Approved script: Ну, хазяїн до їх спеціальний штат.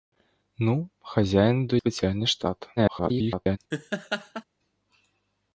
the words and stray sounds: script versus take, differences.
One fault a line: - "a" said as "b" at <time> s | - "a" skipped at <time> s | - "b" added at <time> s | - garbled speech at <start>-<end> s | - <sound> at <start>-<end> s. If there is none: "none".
- "їх" skipped at 1.8 s
- garbled speech at 2.8-3.6 s
- laugh at 3.7-4.4 s